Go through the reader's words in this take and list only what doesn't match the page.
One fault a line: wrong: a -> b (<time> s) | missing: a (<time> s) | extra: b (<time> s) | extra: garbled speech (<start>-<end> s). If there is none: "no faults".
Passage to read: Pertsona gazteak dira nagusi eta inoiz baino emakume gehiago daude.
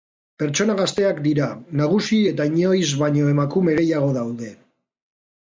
no faults